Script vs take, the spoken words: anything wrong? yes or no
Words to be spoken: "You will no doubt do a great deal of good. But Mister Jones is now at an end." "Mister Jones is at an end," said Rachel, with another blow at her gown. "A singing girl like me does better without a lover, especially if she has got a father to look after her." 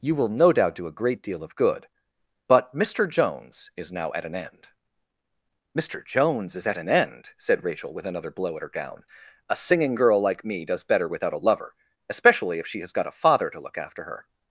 no